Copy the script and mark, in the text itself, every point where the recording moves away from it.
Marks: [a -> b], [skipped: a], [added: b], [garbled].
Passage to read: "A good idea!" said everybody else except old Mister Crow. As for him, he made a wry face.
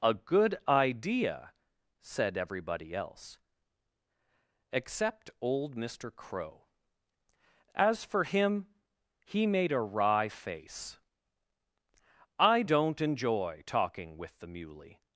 "A good idea!" said everybody else except old Mister Crow. As for him, he made a wry face. [added: I don't enjoy talking with the Muley]